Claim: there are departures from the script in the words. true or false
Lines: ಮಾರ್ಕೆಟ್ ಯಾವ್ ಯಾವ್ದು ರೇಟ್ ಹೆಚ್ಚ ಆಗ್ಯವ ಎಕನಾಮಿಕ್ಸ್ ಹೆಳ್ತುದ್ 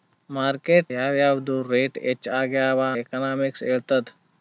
false